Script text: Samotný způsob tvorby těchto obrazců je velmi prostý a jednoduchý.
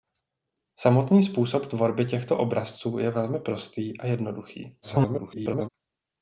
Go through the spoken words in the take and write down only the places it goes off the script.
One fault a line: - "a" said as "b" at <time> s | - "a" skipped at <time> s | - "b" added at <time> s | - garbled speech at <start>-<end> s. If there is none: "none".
- garbled speech at 4.8-5.7 s